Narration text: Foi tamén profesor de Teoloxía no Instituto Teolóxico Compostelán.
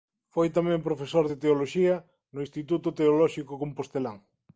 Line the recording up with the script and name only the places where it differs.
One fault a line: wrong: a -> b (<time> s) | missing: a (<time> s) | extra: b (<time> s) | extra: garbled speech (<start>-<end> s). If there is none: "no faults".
no faults